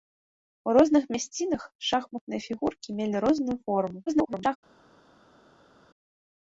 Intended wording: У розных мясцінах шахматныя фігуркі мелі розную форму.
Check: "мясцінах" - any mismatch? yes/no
no